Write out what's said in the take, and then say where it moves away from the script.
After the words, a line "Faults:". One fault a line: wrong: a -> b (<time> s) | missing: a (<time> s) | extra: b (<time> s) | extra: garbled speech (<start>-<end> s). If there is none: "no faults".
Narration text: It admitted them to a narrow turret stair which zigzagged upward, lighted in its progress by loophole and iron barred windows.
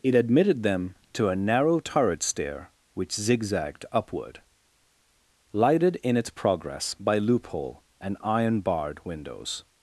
It admitted them to a narrow turret stair which zigzagged upward, lighted in its progress by loophole and iron barred windows.
Faults:
no faults